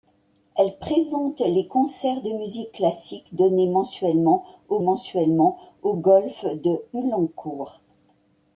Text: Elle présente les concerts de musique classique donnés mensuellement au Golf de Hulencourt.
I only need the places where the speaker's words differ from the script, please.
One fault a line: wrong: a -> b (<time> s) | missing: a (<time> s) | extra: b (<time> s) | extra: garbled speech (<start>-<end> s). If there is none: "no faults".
extra: mensuellement au (4.8 s)